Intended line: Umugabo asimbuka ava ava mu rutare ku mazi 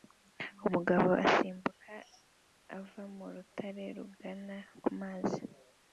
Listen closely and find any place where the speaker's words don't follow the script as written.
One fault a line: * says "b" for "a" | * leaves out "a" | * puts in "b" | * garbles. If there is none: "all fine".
* leaves out "ava"
* puts in "rugana"